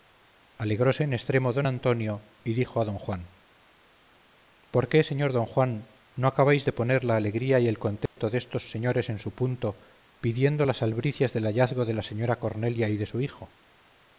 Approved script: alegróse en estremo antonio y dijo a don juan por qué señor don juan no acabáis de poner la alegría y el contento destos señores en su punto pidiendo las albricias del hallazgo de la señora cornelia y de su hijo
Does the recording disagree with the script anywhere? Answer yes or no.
yes